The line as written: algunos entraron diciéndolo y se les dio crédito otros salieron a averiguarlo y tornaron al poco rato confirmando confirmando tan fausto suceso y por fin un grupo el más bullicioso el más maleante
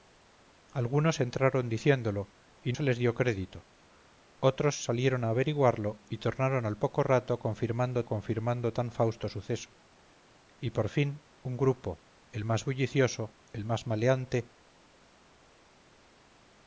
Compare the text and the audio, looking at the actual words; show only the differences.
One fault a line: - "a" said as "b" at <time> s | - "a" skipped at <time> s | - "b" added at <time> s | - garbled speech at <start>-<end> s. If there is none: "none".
none